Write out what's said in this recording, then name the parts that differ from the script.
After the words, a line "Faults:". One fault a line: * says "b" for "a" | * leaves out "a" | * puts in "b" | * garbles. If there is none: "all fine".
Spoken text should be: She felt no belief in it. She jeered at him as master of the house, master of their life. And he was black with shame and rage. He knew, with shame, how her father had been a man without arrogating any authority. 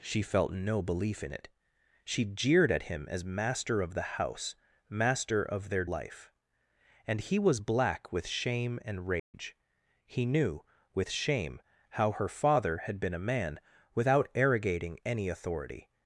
She felt no belief in it. She jeered at him as master of the house, master of their life. And he was black with shame and rage. He knew, with shame, how her father had been a man without arrogating any authority.
Faults:
all fine